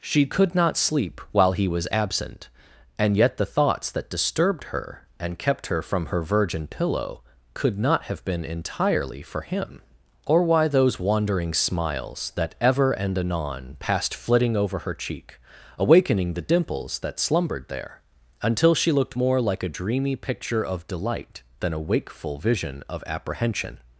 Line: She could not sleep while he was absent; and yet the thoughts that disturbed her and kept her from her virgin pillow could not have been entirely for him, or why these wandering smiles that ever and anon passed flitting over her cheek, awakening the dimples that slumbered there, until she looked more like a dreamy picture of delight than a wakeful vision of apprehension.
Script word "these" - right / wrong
wrong